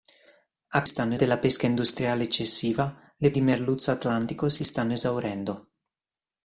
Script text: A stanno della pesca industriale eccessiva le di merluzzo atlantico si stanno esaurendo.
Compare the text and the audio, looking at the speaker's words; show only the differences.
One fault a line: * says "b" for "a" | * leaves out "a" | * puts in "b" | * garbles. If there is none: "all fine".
all fine